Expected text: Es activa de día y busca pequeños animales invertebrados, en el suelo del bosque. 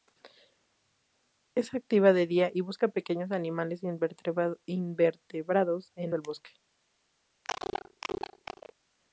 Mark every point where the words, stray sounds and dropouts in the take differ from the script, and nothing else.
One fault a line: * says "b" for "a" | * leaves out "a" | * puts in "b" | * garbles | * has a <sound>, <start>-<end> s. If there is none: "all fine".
* leaves out "el suelo"
* has a cough, 7.4-8.7 s